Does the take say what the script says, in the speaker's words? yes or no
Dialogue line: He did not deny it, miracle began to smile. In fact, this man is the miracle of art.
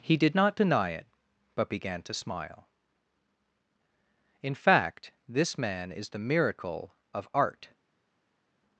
no